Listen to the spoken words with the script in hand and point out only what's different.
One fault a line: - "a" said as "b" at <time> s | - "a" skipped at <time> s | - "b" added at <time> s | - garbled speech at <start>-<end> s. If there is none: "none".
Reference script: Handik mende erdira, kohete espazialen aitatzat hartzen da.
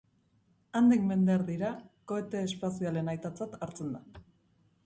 none